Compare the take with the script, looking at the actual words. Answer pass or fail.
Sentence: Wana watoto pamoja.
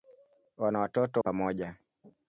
pass